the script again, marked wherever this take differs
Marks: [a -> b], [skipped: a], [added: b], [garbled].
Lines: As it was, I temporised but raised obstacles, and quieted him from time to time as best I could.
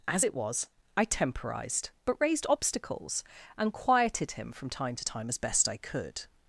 As it was, I temporised but raised obstacles, and quieted him from time to time as best I could.